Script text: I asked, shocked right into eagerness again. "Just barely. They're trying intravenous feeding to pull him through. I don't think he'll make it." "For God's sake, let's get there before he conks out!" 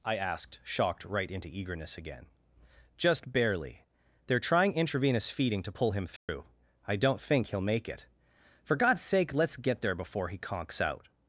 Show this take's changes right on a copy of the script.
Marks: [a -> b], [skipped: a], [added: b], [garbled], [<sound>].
I asked, shocked right into eagerness again. "Just barely. They're trying intravenous feeding to pull him through. [dropout] I don't think he'll make it." "For God's sake, let's get there before he conks out!"